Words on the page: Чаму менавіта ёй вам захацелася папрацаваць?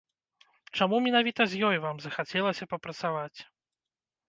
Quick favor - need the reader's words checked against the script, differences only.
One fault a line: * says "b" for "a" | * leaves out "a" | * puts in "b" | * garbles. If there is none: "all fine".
* puts in "з"